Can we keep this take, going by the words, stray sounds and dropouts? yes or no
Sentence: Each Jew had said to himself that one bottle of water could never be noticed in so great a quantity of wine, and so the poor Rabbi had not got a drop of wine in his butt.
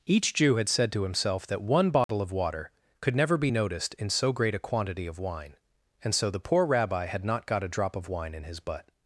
no